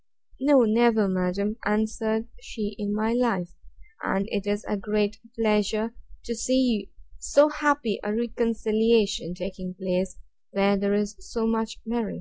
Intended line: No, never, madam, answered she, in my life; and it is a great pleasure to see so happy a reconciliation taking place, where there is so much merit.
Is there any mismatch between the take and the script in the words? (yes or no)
no